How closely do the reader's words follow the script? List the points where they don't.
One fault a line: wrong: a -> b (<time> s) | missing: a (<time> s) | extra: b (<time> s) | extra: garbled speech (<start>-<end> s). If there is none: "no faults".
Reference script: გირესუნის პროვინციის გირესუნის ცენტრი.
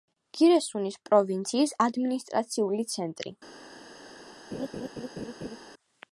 wrong: გირესუნის -> ადმინისტრაციული (1.9 s)